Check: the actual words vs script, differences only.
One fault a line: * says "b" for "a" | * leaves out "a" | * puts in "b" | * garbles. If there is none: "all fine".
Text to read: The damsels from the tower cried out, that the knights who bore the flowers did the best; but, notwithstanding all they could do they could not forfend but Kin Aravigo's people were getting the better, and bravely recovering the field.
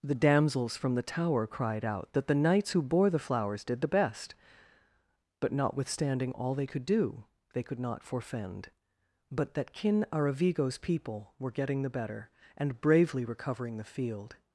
* puts in "that"